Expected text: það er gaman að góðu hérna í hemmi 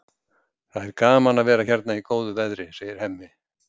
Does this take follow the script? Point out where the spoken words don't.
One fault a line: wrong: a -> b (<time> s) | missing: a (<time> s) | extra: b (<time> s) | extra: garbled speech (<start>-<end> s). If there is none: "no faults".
wrong: góðu -> vera (1.5 s)
extra: góðu veðri segir (2.1 s)